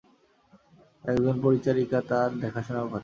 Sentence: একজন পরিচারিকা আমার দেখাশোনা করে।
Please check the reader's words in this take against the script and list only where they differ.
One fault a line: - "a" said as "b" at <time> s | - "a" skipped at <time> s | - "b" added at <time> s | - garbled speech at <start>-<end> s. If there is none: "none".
- "আমার" said as "তার" at 2.1 s